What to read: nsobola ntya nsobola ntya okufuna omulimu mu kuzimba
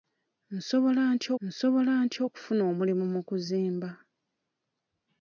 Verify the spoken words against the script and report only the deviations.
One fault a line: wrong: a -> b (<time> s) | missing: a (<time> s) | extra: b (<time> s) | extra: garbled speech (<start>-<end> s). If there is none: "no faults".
no faults